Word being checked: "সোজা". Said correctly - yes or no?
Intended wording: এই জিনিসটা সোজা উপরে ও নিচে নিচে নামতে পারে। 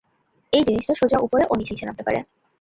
yes